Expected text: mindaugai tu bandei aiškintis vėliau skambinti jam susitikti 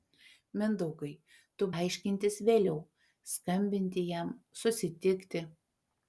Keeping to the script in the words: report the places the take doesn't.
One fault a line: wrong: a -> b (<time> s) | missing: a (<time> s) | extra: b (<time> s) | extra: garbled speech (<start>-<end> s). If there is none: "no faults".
missing: bandei (1.7 s)